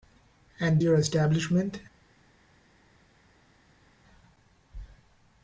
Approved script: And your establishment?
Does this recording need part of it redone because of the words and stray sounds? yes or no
no